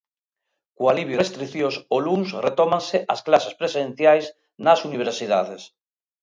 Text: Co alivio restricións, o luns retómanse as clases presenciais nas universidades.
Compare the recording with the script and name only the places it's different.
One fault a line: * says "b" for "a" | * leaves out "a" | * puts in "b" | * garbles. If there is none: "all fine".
all fine